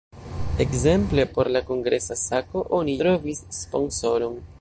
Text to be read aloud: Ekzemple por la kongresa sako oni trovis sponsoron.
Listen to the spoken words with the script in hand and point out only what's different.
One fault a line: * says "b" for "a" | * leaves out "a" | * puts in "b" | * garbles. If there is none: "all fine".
all fine